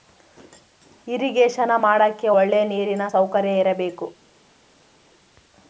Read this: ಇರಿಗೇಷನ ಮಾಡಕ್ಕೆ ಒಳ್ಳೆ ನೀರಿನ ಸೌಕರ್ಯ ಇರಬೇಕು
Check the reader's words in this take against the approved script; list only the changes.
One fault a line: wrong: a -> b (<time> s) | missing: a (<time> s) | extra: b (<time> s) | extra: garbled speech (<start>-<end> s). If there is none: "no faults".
no faults